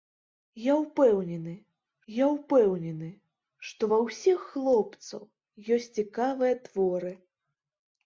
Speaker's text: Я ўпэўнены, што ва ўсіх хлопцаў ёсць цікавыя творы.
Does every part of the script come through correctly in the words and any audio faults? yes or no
no